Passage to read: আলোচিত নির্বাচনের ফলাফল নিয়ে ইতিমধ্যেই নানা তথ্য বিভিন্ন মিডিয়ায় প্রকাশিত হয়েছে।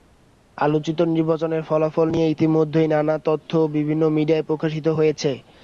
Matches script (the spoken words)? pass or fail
pass